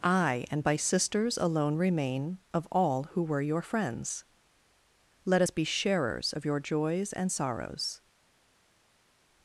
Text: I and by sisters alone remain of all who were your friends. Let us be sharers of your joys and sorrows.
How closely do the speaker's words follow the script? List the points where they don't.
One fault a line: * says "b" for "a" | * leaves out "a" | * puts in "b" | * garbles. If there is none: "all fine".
all fine